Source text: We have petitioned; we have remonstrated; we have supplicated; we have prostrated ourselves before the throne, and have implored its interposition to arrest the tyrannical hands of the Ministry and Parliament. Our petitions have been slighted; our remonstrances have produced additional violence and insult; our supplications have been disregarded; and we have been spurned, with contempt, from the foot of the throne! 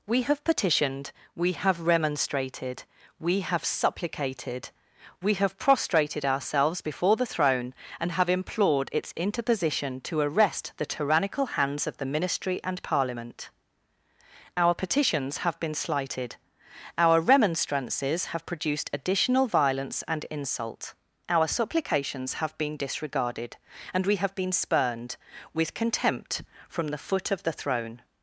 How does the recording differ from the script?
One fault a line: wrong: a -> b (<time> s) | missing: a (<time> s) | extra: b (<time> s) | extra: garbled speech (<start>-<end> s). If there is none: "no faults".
no faults